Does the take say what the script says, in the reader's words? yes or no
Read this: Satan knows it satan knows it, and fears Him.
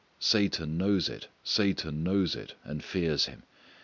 yes